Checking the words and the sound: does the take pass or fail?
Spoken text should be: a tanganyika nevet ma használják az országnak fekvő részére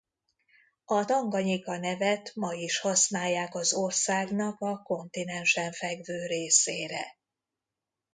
fail